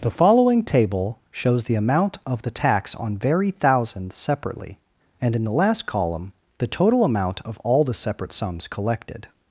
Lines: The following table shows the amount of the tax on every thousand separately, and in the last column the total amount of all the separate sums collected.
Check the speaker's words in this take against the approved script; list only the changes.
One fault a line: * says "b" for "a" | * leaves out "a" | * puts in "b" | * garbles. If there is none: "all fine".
* says "very" for "every"